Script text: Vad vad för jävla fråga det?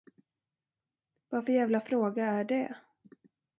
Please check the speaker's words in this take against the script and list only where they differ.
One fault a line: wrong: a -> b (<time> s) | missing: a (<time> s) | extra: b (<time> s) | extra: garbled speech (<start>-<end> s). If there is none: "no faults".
missing: vad (1.4 s)
extra: är (2.2 s)